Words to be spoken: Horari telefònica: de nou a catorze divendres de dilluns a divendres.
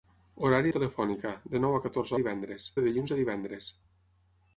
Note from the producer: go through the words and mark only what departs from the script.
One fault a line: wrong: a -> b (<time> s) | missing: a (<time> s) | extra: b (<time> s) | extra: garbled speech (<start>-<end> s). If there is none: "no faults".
no faults